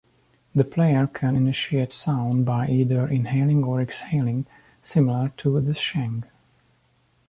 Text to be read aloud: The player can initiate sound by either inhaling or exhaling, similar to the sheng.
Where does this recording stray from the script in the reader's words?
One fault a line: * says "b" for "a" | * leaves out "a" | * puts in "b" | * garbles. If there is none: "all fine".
all fine